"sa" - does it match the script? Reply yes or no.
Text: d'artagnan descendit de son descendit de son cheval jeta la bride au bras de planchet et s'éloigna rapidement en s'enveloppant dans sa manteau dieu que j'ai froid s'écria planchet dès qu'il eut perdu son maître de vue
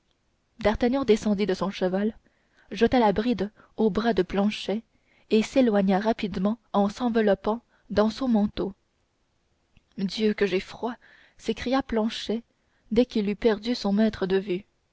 no